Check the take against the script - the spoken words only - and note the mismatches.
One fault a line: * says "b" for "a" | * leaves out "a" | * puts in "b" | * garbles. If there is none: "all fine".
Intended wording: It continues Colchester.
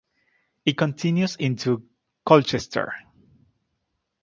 * puts in "into"